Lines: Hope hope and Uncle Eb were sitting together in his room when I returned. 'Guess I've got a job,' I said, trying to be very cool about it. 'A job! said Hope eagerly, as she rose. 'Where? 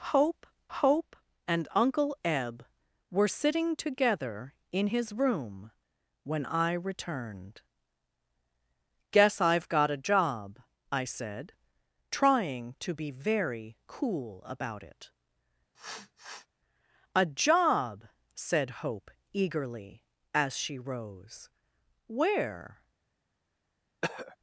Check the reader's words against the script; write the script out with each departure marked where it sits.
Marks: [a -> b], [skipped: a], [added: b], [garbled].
Hope hope and Uncle Eb were sitting together in his room when I returned. 'Guess I've got a job,' I said, trying to be very cool about it. 'A job! said Hope eagerly, as she rose. 'Where?